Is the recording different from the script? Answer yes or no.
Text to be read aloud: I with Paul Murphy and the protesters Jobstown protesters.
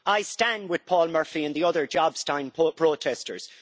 yes